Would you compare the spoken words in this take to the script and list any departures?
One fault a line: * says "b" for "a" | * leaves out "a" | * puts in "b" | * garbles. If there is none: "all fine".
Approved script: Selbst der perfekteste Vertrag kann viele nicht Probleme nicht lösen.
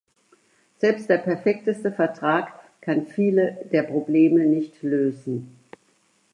* says "der" for "nicht"